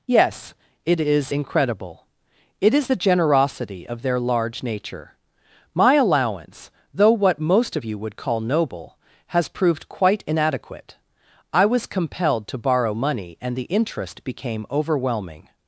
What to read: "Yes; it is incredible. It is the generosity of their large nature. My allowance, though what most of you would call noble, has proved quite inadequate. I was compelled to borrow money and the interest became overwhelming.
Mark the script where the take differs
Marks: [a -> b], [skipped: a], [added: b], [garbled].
"Yes; it is incredible. It is the generosity of their large nature. My allowance, though what most of you would call noble, has proved quite inadequate. I was compelled to borrow money and the interest became overwhelming.